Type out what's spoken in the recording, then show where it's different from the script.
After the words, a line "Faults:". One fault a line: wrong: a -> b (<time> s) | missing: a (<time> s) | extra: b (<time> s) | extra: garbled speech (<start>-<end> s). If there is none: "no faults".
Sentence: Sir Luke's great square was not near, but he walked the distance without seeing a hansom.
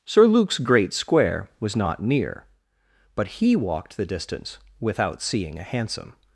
Sir Luke's great square was not near, but he walked the distance without seeing a hansom.
Faults:
no faults